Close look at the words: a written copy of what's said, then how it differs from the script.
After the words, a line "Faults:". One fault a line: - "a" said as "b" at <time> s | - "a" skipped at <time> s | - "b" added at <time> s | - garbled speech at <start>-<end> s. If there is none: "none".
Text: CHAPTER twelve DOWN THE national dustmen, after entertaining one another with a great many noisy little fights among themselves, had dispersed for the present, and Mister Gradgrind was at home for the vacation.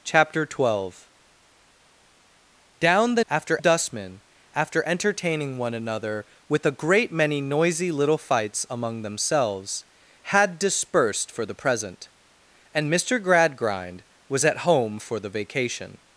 CHAPTER twelve DOWN THE after dustmen, after entertaining one another with a great many noisy little fights among themselves, had dispersed for the present, and Mister Gradgrind was at home for the vacation.
Faults:
- "national" said as "after" at 3.3 s